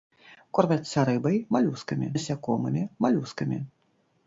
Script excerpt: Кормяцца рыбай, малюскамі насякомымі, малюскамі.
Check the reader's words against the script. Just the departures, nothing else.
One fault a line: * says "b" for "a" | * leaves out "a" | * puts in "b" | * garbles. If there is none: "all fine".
all fine